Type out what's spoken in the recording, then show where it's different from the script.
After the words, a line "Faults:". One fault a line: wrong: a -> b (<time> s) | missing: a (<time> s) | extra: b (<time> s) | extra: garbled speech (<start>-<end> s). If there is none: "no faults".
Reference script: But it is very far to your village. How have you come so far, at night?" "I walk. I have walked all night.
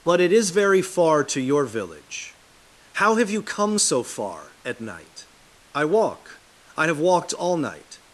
But it is very far to your village. How have you come so far, at night?" "I walk. I have walked all night.
Faults:
no faults